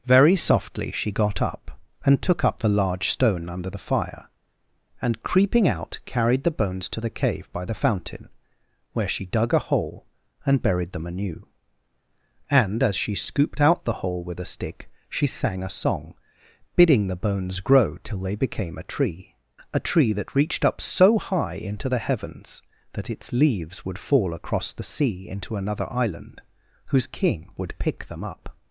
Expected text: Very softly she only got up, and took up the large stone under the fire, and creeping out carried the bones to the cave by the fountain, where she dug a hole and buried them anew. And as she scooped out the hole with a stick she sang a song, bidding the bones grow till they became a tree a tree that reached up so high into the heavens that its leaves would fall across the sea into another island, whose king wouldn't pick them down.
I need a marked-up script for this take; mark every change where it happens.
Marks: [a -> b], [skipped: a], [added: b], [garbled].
Very softly she [skipped: only] got up, and took up the large stone under the fire, and creeping out carried the bones to the cave by the fountain, where she dug a hole and buried them anew. And as she scooped out the hole with a stick she sang a song, bidding the bones grow till they became a tree a tree that reached up so high into the heavens that its leaves would fall across the sea into another island, whose king [wouldn't -> would] pick them [down. -> up]